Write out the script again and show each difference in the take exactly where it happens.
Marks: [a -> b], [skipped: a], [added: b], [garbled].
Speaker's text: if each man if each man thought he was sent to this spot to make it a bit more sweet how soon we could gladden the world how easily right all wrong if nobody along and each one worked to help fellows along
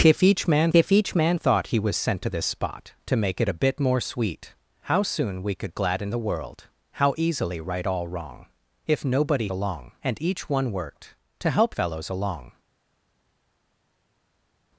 if each man if each man thought he was sent to this spot to make it a bit more sweet how soon we could gladden the world how easily right all wrong if nobody along and each one worked to help fellows along